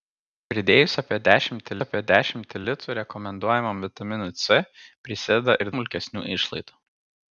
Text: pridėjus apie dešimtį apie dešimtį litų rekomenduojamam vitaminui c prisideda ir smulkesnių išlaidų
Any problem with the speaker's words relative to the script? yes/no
no